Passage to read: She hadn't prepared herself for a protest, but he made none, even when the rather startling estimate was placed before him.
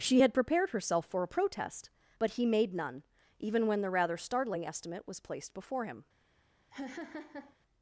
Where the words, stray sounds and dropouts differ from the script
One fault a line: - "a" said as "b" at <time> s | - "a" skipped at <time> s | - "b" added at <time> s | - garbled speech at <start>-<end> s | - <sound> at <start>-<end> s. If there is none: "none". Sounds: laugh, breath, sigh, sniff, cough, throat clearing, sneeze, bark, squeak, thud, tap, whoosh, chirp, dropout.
- "hadn't" said as "had" at 0.2 s
- laugh at 6.7-7.6 s